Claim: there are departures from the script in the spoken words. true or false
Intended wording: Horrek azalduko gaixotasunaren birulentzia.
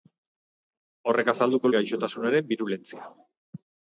false